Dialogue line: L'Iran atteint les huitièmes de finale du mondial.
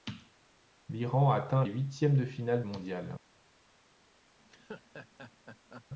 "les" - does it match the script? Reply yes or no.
no